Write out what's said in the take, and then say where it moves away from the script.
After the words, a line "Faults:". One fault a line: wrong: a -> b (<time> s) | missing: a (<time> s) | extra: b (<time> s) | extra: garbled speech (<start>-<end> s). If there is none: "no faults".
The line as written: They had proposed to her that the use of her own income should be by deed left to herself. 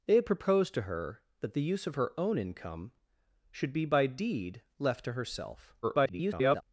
They had proposed to her that the use of her own income should be by deed left to herself. [garbled]
Faults:
extra: garbled speech (5.8-6.6 s)